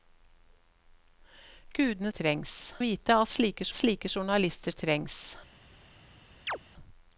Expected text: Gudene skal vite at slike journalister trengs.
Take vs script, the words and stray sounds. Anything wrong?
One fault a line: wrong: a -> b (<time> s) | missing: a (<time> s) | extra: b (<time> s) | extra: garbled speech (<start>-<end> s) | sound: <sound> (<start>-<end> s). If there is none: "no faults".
wrong: skal -> trengs (2.1 s)
extra: slike (3.7 s)
sound: chirp (6.5-6.6 s)